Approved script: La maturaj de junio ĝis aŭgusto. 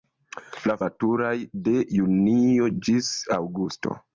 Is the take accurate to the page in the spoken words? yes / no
yes